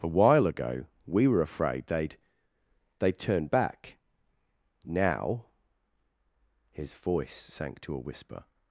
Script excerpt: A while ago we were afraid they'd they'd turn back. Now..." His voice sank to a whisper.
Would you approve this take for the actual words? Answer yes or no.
yes